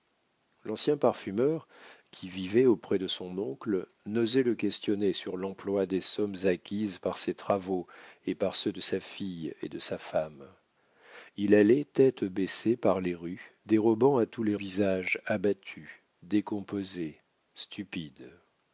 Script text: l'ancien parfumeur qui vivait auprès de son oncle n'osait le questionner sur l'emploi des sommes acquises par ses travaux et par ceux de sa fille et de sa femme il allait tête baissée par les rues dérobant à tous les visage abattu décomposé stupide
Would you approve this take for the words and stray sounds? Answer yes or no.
yes